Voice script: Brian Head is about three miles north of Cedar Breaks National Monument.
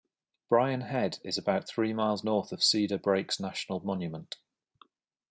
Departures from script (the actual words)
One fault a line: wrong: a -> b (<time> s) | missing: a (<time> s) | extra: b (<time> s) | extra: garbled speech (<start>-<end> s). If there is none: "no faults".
no faults